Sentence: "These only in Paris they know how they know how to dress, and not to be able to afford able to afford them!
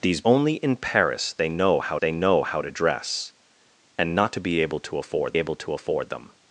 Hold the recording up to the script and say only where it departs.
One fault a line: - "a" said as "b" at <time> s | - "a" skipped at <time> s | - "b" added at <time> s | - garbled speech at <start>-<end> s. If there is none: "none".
none